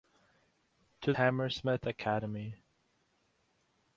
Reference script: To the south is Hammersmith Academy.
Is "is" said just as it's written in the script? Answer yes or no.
no